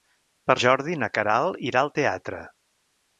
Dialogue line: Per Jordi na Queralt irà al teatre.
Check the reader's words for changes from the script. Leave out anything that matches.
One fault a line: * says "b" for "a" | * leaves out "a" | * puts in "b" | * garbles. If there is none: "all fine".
all fine